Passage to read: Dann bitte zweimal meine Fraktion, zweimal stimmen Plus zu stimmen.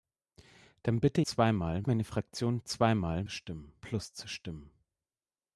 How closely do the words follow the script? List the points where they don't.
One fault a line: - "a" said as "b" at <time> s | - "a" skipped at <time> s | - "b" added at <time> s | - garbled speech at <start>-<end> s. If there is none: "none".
none